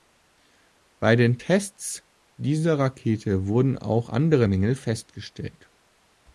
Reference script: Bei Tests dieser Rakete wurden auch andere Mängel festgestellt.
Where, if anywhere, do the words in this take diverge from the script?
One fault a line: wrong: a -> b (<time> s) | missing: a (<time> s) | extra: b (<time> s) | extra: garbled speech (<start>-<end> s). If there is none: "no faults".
extra: den (1.1 s)